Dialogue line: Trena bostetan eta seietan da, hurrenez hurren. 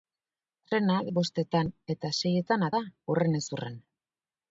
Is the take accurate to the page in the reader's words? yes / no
yes